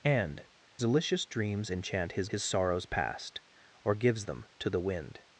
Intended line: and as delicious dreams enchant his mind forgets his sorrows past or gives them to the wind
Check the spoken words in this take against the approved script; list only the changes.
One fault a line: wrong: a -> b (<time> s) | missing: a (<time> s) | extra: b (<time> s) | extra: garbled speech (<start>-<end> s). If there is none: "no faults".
missing: as (0.5 s)
missing: mind forgets (2.3 s)